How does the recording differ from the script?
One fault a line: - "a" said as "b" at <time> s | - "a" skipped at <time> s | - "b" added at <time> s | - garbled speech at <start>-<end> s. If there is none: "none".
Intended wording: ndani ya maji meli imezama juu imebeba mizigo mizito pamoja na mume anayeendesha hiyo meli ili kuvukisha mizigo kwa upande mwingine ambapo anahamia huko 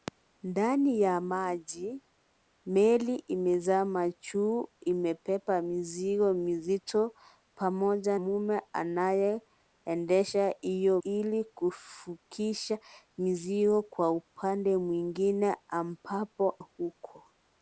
- "na" skipped at 8.2 s
- "meli" skipped at 11.0 s
- "anahamia" skipped at 16.6 s